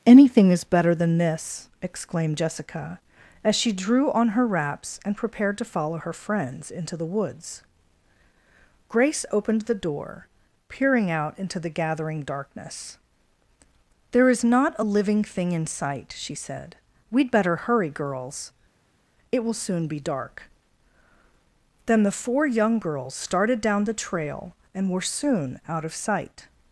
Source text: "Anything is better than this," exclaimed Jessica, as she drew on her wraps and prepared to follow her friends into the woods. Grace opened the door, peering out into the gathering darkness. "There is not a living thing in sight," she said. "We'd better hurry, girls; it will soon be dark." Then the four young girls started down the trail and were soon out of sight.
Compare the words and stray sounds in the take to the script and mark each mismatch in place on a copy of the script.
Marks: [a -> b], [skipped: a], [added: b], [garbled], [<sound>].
"Anything is better than this," exclaimed Jessica, as she drew on her wraps and prepared to follow her friends into the woods. Grace opened the door, peering out into the gathering darkness. "There is not a living thing in sight," she said. "We'd better hurry, girls; it will soon be dark." Then the four young girls started down the trail and were soon out of sight.